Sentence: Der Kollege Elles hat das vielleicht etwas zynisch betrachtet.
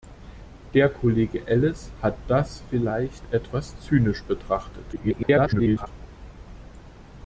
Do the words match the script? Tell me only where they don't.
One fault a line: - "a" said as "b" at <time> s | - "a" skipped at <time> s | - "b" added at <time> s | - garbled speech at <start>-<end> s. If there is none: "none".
- garbled speech at 4.9-5.9 s